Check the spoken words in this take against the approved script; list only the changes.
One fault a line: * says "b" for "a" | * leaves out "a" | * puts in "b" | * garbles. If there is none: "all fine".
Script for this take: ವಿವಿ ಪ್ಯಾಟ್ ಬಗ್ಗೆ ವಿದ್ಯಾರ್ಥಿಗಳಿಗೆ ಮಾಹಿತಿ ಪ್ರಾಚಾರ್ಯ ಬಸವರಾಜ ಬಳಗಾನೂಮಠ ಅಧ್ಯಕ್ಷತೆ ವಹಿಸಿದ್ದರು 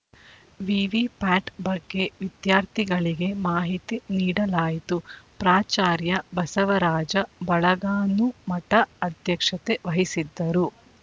* puts in "ನೀಡಲಾಯಿತು"